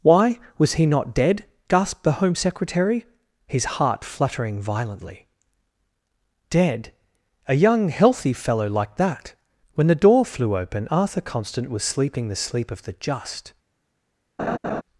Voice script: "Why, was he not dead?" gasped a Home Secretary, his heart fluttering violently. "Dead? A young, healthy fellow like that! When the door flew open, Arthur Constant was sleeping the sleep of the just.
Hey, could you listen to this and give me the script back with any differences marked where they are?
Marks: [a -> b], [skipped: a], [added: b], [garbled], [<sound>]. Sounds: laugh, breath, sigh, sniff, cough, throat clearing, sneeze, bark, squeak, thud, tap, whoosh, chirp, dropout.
"Why, was he not dead?" gasped [a -> the] Home Secretary, his heart fluttering violently. "Dead? A young, healthy fellow like that! When the door flew open, Arthur Constant was sleeping the sleep of the just. [laugh]